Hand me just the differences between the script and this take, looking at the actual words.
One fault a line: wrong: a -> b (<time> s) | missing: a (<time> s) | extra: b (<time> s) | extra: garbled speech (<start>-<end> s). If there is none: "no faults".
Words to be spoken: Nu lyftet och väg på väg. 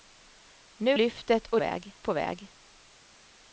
no faults